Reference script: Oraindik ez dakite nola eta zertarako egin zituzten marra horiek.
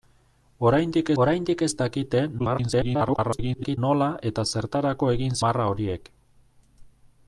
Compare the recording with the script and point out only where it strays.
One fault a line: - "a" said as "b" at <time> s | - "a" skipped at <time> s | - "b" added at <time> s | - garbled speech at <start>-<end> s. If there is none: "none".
- "oraindik" added at 1.2 s
- garbled speech at 2.4-3.8 s
- "zituzten" skipped at 5.4 s